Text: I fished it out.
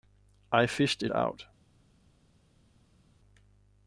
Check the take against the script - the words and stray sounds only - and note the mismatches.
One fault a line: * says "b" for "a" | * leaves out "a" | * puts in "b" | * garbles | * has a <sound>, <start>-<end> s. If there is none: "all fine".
all fine